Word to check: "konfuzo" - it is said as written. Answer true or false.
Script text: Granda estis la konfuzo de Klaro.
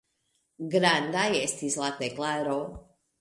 false